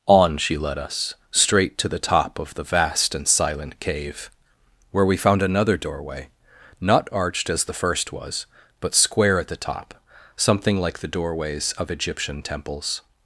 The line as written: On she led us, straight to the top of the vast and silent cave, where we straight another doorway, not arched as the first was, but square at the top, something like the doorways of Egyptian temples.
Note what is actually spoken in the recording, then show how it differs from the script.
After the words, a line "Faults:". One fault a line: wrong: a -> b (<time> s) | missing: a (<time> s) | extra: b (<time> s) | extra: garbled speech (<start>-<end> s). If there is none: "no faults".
On she led us, straight to the top of the vast and silent cave, where we found another doorway, not arched as the first was, but square at the top, something like the doorways of Egyptian temples.
Faults:
wrong: straight -> found (5.2 s)